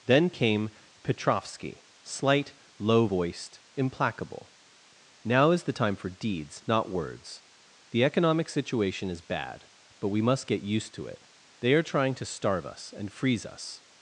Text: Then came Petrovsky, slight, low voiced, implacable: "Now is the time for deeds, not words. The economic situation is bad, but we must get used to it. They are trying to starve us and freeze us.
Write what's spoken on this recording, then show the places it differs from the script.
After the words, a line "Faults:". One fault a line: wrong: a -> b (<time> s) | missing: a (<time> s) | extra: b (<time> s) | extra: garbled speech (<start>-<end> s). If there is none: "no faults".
Then came Petrovsky, slight, low voiced, implacable: "Now is the time for deeds, not words. The economic situation is bad, but we must get used to it. They are trying to starve us and freeze us.
Faults:
no faults